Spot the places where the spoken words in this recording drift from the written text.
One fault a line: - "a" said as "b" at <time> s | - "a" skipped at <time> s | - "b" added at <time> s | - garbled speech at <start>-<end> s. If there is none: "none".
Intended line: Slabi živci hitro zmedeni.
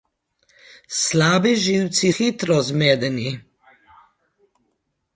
none